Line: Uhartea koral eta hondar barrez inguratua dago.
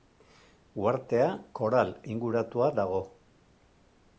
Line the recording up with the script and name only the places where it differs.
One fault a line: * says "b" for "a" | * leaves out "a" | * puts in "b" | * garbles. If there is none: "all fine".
* leaves out "eta hondar barrez"